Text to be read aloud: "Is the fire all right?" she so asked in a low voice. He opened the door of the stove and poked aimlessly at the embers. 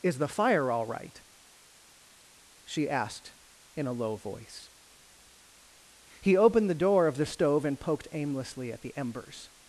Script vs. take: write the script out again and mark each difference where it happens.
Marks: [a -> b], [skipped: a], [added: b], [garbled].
"Is the fire all right?" she [skipped: so] asked in a low voice. He opened the door of the stove and poked aimlessly at the embers.